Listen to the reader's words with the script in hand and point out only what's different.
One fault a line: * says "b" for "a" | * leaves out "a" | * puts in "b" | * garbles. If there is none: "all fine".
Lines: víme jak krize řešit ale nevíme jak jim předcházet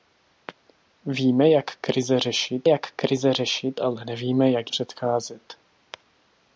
* puts in "jak krize řešit"
* leaves out "jim"